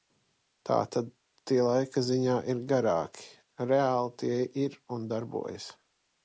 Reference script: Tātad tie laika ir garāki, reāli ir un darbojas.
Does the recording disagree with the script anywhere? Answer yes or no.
yes